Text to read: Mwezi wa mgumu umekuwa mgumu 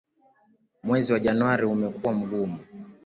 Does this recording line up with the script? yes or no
no